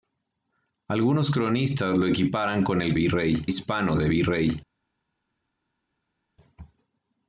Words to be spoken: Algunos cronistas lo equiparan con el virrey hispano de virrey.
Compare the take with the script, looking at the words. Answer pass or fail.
pass